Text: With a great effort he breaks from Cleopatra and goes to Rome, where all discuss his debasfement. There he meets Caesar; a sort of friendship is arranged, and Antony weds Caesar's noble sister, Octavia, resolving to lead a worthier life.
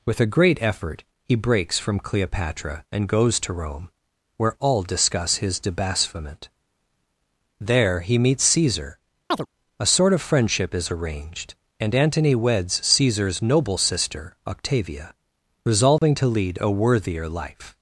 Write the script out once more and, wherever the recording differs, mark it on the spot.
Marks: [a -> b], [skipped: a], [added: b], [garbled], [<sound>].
With a great effort he breaks from Cleopatra and goes to Rome, where all discuss his debasfement. There he meets Caesar; [chirp] a sort of friendship is arranged, and Antony weds Caesar's noble sister, Octavia, resolving [dropout] to lead a worthier life.